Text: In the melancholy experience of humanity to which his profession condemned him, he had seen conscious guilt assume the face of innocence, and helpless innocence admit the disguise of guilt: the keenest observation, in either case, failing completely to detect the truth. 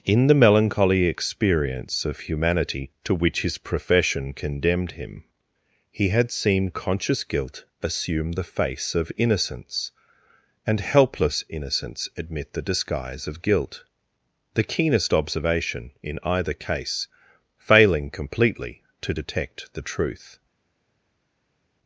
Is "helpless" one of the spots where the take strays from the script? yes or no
no